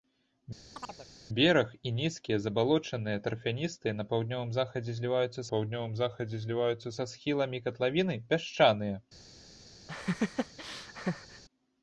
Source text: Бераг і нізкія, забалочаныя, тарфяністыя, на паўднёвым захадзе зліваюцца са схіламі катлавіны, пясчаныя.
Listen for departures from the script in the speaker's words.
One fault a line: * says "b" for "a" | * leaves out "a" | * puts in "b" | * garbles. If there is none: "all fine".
* puts in "паўднёвым захадзе зліваюцца"